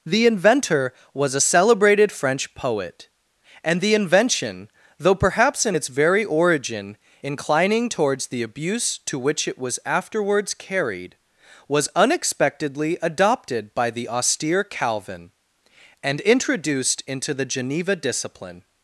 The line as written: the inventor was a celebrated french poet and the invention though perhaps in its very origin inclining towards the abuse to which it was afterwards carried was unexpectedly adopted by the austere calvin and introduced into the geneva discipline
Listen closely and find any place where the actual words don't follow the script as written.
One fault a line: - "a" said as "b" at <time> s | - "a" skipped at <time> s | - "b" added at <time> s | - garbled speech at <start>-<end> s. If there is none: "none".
none